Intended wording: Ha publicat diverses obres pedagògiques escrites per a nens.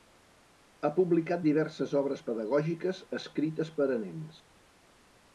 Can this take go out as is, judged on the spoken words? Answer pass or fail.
pass